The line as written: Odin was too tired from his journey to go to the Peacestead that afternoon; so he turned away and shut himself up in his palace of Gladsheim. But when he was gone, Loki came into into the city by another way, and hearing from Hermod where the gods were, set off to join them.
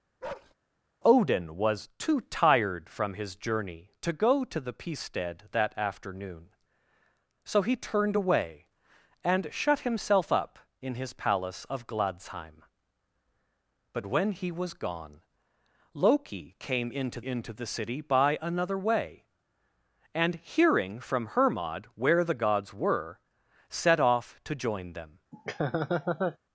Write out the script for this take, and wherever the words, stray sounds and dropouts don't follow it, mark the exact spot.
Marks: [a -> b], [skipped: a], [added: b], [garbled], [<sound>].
[bark] Odin was too tired from his journey to go to the Peacestead that afternoon; so he turned away and shut himself up in his palace of Gladsheim. But when he was gone, Loki came into into the city by another way, and hearing from Hermod where the gods were, set off to join them. [laugh]